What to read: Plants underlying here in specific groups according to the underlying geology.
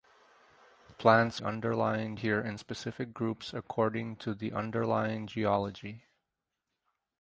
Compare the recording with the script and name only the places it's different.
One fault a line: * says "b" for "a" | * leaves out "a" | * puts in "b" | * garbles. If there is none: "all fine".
all fine